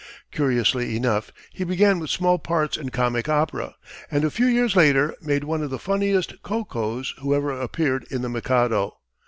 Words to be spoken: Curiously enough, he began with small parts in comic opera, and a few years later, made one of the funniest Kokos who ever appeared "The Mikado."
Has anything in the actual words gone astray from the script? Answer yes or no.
yes